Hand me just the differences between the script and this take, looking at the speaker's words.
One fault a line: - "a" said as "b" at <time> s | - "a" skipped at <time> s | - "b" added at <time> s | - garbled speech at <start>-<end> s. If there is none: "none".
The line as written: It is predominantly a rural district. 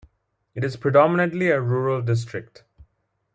none